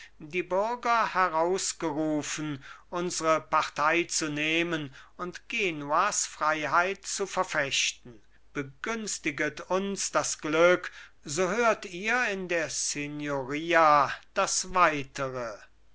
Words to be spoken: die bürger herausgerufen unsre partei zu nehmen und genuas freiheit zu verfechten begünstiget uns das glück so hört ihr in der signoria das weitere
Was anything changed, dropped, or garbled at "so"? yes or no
no